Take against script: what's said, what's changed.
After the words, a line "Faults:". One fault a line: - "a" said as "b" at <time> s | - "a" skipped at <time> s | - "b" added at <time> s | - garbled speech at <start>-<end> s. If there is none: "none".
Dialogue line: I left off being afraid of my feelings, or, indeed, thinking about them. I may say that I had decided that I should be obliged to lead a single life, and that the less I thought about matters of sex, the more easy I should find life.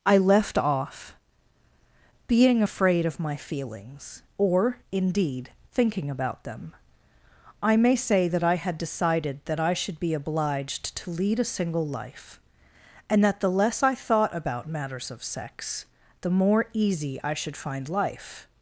I left off being afraid of my feelings, or, indeed, thinking about them. I may say that I had decided that I should be obliged to lead a single life, and that the less I thought about matters of sex, the more easy I should find life.
Faults:
none